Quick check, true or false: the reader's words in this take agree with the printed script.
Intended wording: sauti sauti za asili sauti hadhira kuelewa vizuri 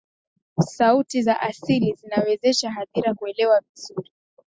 false